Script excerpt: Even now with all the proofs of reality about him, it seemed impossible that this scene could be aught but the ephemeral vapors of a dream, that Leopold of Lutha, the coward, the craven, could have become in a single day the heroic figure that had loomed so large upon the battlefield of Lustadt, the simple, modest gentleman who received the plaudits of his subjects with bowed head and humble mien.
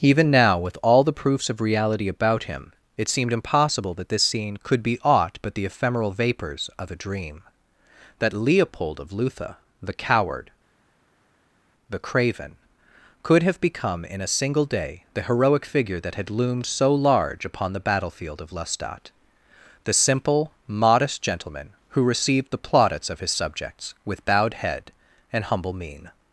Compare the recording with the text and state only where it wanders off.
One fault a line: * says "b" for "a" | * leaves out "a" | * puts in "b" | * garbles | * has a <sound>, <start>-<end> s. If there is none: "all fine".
all fine